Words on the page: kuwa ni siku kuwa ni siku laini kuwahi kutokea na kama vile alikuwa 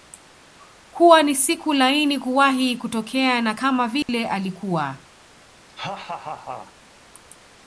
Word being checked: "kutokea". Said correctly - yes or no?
yes